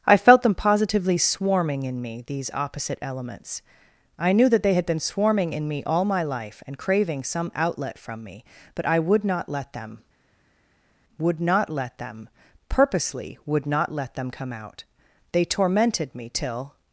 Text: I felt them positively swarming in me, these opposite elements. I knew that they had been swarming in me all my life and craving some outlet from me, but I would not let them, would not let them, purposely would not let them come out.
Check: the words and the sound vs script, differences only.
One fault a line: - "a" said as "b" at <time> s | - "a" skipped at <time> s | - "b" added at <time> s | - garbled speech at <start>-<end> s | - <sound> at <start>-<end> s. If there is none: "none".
- "They tormented me till" added at 15.3 s